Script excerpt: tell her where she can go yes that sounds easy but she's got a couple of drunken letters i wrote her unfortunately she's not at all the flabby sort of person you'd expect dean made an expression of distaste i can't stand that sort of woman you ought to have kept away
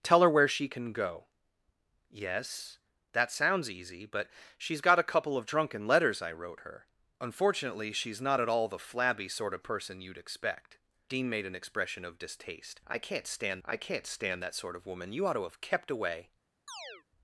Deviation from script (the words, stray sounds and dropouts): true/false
true